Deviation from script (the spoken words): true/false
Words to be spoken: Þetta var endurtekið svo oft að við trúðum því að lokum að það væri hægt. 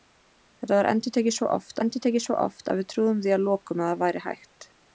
true